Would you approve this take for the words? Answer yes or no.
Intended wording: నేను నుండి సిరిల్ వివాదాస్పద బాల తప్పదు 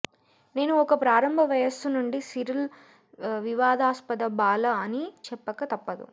no